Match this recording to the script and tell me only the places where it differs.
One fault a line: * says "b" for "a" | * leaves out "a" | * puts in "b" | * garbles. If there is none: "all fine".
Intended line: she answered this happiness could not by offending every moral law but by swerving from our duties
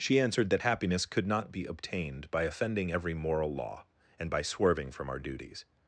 * says "that" for "this"
* puts in "be obtained"
* says "and" for "but"